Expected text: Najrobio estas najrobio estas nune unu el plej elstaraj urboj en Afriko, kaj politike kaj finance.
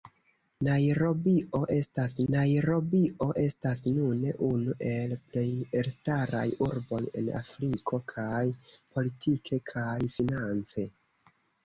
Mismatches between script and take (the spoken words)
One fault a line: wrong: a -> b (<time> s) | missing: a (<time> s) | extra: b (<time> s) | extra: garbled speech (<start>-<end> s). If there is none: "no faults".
no faults